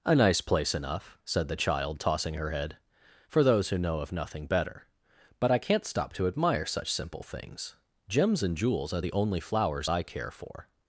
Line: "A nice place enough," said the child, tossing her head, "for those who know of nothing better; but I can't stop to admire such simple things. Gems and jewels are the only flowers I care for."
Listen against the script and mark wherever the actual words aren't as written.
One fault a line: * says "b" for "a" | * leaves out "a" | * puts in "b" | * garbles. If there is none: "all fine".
all fine